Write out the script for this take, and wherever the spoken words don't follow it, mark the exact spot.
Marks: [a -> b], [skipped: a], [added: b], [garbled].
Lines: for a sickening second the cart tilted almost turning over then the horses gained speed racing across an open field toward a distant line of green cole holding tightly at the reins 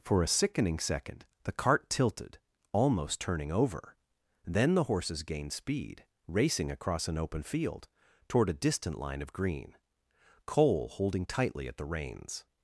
for a sickening second the cart tilted almost turning over then the horses gained speed racing across an open field toward a distant line of green cole holding tightly at the reins